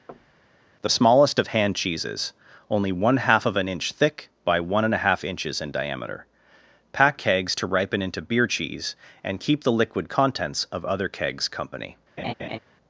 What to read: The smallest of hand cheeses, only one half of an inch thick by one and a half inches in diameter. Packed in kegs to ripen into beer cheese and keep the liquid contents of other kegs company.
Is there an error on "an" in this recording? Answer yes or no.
no